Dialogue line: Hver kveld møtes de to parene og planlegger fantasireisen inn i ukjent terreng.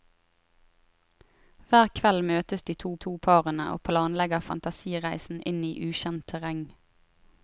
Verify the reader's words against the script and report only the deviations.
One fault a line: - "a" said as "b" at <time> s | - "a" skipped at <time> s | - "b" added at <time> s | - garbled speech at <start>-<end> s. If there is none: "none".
- "to" added at 3.0 s